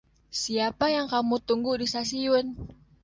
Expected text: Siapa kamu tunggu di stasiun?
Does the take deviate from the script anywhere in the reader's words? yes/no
yes